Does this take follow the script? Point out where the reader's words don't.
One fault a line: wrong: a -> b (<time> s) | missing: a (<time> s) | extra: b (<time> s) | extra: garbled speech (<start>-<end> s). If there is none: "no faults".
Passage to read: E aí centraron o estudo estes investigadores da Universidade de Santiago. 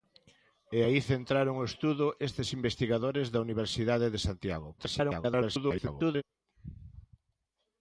extra: garbled speech (4.8-6.2 s)